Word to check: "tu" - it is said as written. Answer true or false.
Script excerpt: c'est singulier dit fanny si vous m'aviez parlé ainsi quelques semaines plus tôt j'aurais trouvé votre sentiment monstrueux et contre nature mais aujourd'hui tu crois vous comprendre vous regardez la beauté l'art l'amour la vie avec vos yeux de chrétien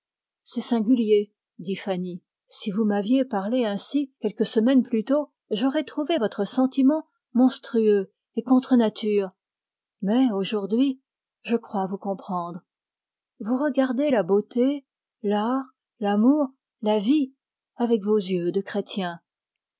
false